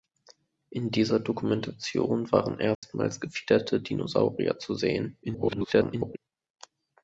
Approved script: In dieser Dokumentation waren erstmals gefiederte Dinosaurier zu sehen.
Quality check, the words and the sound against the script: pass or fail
fail